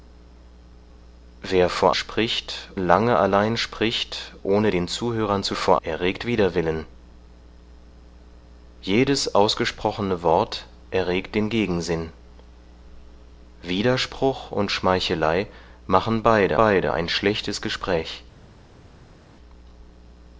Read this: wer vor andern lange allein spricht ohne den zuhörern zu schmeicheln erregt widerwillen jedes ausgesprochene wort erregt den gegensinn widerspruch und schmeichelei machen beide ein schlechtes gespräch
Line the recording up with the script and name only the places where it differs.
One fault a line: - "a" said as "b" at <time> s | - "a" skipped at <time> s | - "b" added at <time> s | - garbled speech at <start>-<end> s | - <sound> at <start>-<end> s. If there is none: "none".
- "andern" said as "spricht" at 1.9 s
- "schmeicheln" said as "vor" at 5.5 s
- "beide" added at 16.5 s